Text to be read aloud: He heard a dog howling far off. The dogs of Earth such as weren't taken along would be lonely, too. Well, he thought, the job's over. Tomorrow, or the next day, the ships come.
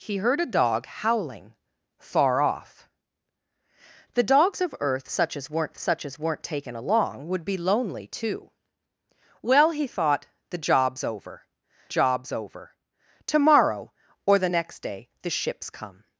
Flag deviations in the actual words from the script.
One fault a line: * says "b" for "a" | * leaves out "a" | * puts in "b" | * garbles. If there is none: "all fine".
* puts in "such as weren't"
* puts in "job's over"